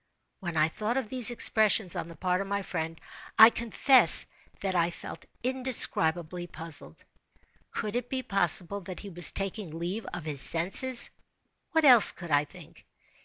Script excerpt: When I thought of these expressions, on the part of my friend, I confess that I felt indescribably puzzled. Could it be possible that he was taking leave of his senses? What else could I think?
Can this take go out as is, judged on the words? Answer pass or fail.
pass